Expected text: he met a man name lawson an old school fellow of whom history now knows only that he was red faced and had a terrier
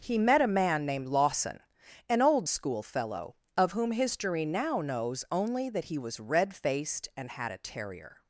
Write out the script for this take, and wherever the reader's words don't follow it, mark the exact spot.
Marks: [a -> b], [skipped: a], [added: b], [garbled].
he met a man [name -> named] lawson an old school fellow of whom history now knows only that he was red faced and had a terrier